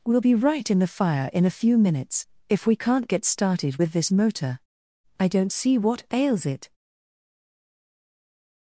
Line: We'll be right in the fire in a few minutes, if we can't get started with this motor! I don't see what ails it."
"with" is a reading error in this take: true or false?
false